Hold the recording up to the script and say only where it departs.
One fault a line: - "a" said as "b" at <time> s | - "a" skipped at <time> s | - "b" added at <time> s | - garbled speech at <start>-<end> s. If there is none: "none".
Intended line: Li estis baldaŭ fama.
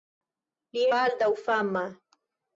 - "estis" skipped at 0.8 s